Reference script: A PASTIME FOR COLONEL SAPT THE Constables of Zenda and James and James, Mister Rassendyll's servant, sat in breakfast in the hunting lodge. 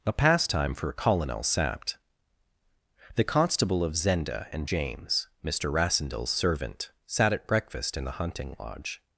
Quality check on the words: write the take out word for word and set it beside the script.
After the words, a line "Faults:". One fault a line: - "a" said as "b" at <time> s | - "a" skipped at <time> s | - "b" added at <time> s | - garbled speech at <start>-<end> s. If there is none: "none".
A PASTIME FOR COLONEL SAPT THE Constable of Zenda and James, Mister Rassendyll's servant, sat at breakfast in the hunting lodge.
Faults:
- "Constables" said as "Constable" at 3.2 s
- "and James" skipped at 5.3 s
- "in" said as "at" at 7.3 s